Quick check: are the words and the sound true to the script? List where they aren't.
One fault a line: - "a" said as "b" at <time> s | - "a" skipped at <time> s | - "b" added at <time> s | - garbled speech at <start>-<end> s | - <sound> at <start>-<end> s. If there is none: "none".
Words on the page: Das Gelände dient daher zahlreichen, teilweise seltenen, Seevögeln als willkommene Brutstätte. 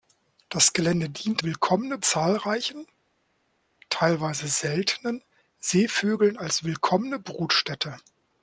- "daher" said as "willkommene" at 1.4 s